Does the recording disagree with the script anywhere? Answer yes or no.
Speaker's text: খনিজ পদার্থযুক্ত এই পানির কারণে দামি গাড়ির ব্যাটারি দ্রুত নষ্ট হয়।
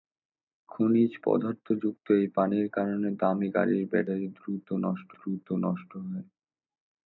yes